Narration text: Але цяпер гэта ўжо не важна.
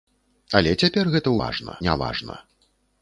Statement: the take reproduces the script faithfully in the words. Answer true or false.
false